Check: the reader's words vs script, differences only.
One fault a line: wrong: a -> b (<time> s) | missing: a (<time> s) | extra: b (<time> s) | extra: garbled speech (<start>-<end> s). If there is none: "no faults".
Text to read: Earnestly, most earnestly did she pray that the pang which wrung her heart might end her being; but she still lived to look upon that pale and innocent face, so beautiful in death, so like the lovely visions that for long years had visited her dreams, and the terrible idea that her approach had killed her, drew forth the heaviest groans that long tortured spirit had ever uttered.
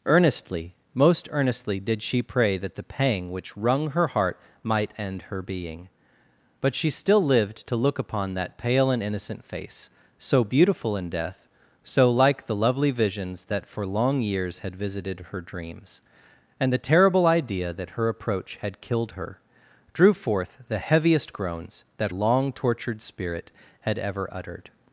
no faults